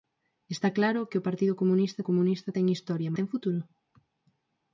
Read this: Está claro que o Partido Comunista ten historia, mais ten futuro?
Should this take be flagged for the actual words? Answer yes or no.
yes